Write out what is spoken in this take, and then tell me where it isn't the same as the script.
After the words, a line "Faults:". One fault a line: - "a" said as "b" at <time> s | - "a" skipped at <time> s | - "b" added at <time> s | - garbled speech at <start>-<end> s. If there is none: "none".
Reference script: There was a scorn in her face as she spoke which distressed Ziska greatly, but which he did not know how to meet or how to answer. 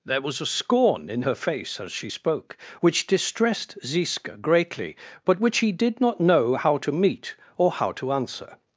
There was a scorn in her face as she spoke which distressed Ziska greatly, but which he did not know how to meet or how to answer.
Faults:
none